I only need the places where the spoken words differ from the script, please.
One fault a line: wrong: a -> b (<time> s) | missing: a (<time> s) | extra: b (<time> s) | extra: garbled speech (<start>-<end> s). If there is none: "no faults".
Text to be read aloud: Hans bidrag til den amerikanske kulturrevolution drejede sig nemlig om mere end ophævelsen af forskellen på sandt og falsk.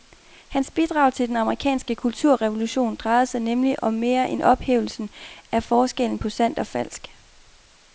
no faults